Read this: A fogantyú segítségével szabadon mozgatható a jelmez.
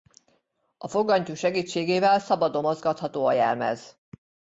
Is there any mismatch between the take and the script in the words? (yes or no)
no